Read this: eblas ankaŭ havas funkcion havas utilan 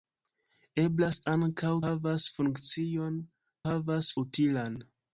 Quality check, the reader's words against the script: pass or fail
pass